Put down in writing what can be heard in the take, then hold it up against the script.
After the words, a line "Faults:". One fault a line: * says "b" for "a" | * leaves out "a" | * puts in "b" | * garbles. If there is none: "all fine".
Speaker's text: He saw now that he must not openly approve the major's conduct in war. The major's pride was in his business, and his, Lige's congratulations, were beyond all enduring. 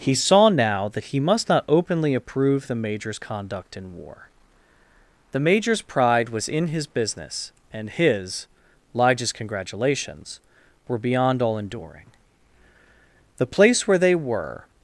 He saw now that he must not openly approve the major's conduct in war. The major's pride was in his business, and his, Lige's congratulations, were beyond all enduring. The place where they were
Faults:
* puts in "The place where they were"